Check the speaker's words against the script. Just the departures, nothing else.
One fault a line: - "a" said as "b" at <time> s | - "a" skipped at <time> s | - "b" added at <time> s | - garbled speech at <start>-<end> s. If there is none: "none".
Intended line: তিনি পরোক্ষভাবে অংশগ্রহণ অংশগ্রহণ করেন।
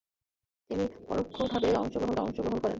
none